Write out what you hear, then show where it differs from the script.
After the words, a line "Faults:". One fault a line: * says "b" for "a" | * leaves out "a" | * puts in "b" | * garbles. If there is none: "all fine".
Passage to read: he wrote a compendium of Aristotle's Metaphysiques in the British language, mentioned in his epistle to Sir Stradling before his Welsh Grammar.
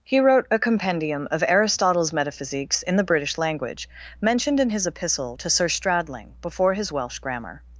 he wrote a compendium of Aristotle's Metaphysiques in the British language, mentioned in his epistle to Sir Stradling before his Welsh Grammar.
Faults:
all fine